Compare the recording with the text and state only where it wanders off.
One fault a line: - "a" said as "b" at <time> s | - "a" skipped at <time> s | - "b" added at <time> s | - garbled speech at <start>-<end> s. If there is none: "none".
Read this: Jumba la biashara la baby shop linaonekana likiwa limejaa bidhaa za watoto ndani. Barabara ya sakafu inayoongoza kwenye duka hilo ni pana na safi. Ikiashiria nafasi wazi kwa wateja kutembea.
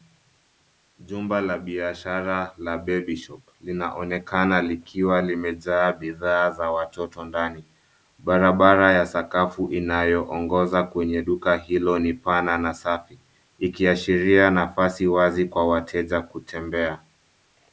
none